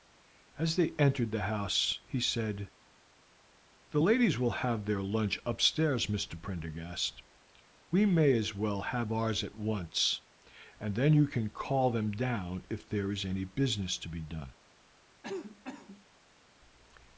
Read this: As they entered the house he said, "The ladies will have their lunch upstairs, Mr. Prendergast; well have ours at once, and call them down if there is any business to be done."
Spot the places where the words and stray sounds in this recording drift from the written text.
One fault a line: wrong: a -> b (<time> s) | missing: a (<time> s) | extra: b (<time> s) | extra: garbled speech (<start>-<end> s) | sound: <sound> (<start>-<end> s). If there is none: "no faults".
extra: we may as (7.9 s)
extra: then you can (10.9 s)
sound: cough (15.2-16.1 s)